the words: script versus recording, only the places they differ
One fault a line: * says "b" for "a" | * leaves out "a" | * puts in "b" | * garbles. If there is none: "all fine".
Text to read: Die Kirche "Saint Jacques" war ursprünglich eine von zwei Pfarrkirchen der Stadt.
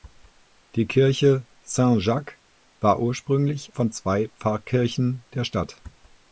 * leaves out "eine"